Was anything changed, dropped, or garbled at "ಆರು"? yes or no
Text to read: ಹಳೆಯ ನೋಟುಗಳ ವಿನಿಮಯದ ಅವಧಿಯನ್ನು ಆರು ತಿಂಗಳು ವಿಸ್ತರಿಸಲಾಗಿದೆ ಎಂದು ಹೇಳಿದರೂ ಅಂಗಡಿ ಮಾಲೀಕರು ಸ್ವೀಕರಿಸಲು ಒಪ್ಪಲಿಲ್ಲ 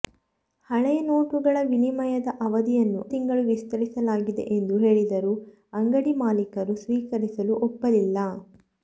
yes